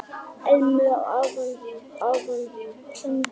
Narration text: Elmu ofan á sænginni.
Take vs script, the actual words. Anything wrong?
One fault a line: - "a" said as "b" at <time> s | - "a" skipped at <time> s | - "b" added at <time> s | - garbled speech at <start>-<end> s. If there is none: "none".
- "ofan á" added at 2.1 s